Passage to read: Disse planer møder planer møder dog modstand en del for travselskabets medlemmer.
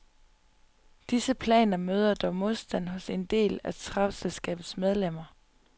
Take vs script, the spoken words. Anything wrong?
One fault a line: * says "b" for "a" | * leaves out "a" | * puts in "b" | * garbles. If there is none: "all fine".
* leaves out "planer møder"
* puts in "hos"
* says "af" for "for"